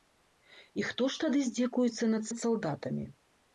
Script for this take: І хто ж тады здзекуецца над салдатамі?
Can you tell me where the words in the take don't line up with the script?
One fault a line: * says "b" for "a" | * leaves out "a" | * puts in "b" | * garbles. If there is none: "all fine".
* puts in "над"